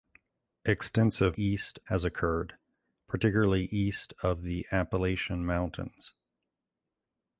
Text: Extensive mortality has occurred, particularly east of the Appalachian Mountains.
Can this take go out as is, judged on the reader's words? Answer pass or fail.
fail